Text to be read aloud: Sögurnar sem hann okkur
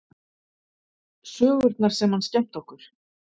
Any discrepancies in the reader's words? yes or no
yes